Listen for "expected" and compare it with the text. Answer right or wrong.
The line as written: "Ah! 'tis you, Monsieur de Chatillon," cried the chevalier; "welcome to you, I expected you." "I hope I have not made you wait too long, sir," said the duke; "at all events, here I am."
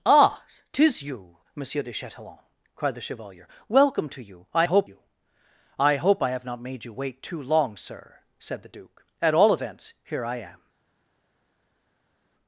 wrong